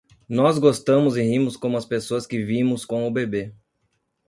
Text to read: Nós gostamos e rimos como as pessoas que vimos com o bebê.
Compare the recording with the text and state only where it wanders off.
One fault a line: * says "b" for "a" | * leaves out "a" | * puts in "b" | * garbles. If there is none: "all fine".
all fine